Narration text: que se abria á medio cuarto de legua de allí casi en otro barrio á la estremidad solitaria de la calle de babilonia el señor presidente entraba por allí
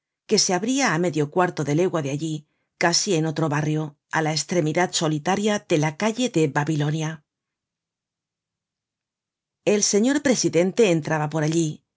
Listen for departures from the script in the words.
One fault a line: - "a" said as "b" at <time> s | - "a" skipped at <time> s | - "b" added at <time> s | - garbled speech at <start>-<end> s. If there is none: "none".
none